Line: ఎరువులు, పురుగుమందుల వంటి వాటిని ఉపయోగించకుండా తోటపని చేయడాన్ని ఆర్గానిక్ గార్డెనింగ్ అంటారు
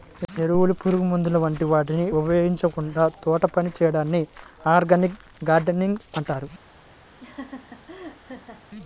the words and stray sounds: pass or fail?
fail